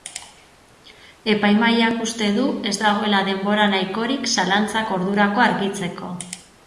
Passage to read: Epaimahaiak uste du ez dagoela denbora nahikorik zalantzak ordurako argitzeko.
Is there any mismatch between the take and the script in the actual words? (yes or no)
no